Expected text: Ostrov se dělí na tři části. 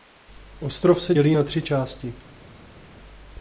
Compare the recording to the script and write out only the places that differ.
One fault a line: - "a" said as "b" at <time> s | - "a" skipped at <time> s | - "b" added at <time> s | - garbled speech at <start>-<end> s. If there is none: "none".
none